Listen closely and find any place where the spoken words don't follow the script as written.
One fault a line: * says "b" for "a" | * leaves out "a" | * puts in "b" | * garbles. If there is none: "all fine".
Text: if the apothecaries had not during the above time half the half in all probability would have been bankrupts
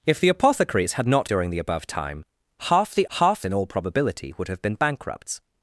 all fine